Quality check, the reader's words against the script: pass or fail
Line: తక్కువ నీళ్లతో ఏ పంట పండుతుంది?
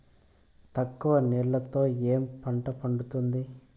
pass